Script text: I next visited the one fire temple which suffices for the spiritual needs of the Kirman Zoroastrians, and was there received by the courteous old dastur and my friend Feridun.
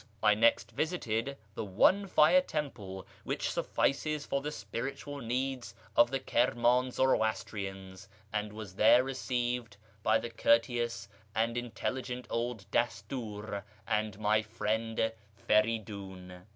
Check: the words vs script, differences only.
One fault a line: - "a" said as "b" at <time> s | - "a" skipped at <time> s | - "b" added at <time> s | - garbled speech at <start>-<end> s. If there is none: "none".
- "and intelligent" added at 11.3 s